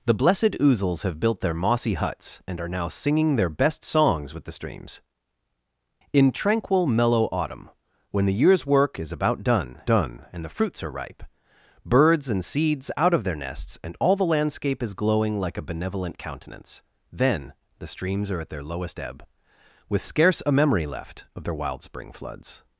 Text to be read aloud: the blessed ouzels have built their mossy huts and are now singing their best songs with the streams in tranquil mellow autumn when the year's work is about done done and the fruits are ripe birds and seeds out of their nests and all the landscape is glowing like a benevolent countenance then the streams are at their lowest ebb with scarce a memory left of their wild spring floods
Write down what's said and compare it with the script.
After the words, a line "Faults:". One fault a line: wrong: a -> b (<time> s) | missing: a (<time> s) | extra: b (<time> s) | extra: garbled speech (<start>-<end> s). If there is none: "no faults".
the blessed ouzels have built their mossy huts and are now singing their best songs with the streams in tranquil mellow autumn when the year's work is about done done and the fruits are ripe birds and seeds out of their nests and all the landscape is glowing like a benevolent countenance then the streams are at their lowest ebb with scarce a memory left of their wild spring floods
Faults:
no faults